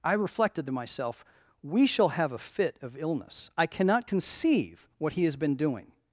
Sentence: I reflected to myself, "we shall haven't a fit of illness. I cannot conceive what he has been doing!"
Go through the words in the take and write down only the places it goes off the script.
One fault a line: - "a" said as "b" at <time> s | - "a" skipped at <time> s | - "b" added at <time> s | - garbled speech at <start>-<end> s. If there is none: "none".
- "haven't" said as "have" at 2.1 s